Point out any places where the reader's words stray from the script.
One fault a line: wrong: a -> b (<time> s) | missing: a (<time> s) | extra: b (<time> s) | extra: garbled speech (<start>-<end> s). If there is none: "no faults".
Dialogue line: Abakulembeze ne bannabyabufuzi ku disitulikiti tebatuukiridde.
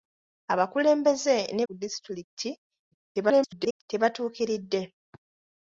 missing: bannabyabufuzi (1.6 s)
extra: garbled speech (2.9-3.8 s)